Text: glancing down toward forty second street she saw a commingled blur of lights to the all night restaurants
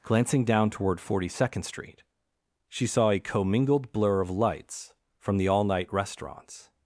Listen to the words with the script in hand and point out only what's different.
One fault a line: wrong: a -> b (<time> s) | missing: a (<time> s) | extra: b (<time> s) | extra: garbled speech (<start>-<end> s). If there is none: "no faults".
wrong: to -> from (5.2 s)